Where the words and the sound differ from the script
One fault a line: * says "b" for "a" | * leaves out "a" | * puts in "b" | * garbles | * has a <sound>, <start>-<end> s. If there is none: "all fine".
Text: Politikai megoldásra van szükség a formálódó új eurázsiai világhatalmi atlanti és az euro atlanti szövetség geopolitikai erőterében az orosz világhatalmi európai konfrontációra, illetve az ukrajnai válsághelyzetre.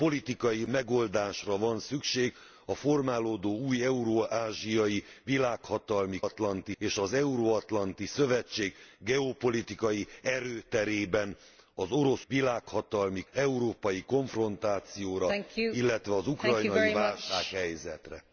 all fine